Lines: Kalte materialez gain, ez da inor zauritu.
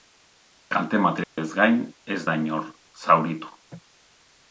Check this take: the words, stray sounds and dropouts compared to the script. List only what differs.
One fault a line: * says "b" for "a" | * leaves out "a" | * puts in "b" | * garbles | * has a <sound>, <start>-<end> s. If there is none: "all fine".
* has a dropout, 1.2-1.4 s